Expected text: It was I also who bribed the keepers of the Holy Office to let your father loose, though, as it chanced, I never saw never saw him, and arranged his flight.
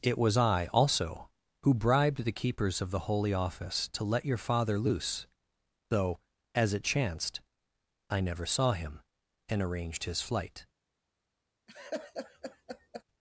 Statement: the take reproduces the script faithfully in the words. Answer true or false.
false